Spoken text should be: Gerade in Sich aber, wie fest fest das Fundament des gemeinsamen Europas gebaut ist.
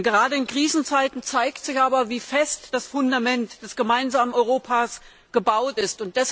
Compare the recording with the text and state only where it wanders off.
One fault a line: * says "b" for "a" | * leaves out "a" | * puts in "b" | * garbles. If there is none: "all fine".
* puts in "Krisenzeiten zeigt"
* leaves out "fest"